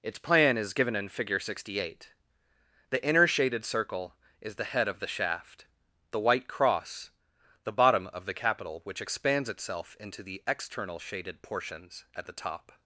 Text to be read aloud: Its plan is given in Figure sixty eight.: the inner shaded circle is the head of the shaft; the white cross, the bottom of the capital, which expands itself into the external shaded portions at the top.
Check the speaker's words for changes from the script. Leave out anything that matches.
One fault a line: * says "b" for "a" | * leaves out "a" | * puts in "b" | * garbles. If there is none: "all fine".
all fine